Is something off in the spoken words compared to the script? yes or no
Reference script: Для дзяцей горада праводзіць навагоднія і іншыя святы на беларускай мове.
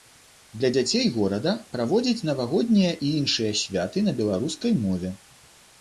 no